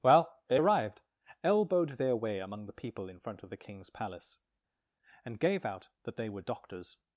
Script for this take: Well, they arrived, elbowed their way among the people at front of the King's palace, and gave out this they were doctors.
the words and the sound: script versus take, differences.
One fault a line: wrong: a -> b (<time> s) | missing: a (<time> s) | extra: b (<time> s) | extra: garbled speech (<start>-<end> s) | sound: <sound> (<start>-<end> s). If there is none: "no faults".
wrong: at -> in (3.1 s)
wrong: this -> that (6.0 s)